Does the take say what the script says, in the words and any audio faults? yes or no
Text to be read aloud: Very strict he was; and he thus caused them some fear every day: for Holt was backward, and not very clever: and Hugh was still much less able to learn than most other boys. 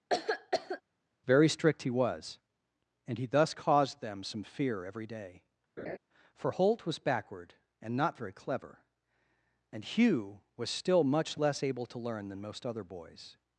no